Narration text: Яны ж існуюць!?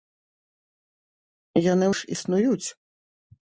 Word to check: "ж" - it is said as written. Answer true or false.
true